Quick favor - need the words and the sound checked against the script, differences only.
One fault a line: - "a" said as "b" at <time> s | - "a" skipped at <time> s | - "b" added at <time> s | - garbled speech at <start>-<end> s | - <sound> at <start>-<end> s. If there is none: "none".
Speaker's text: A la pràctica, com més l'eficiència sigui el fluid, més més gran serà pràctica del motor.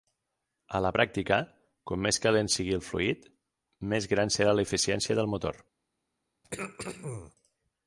- "l'eficiència" said as "calent" at 2.3 s
- "més" skipped at 4.1 s
- "pràctica" said as "l'eficiència" at 4.5 s
- throat clearing at 6.4-7.4 s